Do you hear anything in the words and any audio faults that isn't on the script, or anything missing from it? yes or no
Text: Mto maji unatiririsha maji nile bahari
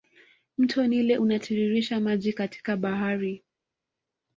yes